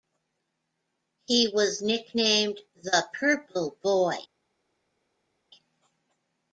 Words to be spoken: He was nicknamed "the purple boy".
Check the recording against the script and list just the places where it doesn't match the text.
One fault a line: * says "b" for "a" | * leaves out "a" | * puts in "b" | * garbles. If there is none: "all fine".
all fine